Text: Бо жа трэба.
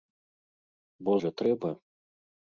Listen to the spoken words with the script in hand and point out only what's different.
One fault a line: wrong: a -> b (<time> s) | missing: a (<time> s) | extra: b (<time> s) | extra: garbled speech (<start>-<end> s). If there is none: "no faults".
no faults